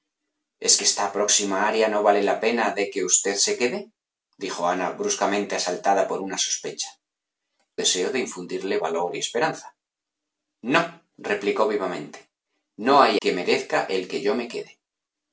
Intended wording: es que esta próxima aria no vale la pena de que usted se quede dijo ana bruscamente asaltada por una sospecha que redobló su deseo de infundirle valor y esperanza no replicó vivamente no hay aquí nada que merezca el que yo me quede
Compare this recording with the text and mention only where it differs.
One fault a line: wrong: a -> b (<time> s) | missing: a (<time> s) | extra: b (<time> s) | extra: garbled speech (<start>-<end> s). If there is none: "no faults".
missing: que redobló su (6.9 s)
missing: aquí nada (13.2 s)